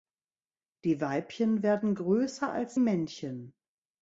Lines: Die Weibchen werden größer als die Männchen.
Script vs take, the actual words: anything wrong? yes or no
yes